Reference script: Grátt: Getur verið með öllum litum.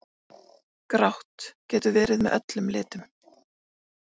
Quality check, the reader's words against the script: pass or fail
pass